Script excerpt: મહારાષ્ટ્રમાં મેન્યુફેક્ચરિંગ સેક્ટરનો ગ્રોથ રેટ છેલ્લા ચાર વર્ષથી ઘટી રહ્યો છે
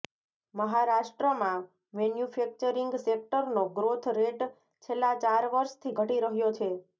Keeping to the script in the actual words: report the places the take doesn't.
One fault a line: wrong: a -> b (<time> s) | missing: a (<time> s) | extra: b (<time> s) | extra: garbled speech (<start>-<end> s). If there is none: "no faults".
no faults